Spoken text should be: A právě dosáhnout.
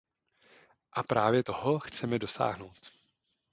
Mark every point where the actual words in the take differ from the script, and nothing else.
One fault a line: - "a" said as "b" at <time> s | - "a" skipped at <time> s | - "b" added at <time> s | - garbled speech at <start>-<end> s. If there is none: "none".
- "toho chceme" added at 1.4 s